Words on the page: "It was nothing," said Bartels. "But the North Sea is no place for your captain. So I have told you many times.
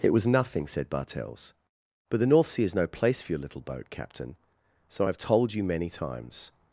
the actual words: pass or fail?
fail